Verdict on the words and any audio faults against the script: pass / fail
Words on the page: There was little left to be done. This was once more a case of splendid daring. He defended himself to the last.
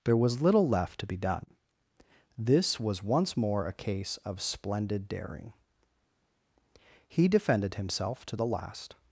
pass